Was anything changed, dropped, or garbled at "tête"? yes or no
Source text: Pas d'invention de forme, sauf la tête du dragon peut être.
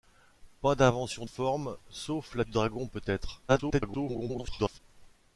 yes